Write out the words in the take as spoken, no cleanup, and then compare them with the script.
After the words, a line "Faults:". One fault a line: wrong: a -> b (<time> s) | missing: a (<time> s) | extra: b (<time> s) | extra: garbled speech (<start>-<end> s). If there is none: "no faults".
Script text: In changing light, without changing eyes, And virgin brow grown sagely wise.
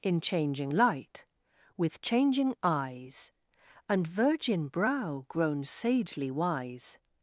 In changing light, with changing eyes, And virgin brow grown sagely wise.
Faults:
wrong: without -> with (1.8 s)